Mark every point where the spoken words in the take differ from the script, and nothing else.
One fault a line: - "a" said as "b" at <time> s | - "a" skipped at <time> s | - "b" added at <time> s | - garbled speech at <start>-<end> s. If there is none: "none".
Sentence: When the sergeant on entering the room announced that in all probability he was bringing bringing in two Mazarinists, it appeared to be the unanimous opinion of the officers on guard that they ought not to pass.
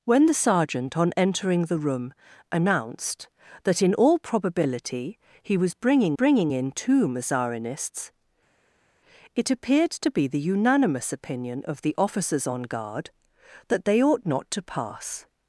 none